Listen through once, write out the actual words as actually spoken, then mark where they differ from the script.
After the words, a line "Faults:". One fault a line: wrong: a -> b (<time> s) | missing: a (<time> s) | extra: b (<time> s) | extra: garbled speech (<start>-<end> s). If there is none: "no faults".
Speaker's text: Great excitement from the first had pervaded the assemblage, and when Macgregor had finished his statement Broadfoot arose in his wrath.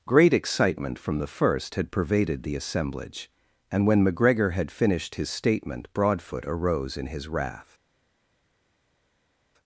Great excitement from the first had pervaded the assemblage, and when Macgregor had finished his statement Broadfoot arose in his wrath.
Faults:
no faults